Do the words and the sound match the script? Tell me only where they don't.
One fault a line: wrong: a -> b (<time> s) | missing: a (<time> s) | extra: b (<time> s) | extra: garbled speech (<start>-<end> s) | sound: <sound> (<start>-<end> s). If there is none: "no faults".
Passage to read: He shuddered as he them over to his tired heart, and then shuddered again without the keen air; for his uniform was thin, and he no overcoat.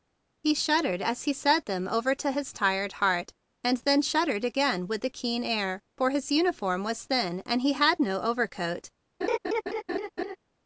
extra: said (1.3 s)
wrong: without -> with (4.9 s)
extra: had (7.7 s)
sound: laugh (9.2-10.4 s)